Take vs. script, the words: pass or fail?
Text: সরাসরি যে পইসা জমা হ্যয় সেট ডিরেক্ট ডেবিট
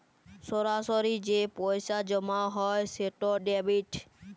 fail